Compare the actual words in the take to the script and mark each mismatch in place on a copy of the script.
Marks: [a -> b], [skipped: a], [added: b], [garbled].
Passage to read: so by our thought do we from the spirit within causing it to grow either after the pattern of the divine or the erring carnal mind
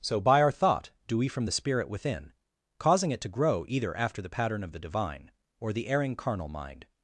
so by our thought do we from the spirit within causing it to grow either after the pattern of the divine or the erring carnal mind